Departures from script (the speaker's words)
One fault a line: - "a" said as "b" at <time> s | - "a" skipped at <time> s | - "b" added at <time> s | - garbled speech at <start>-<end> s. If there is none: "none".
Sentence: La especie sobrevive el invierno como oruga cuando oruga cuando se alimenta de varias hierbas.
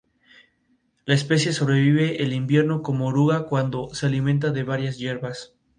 - "oruga cuando" skipped at 3.9 s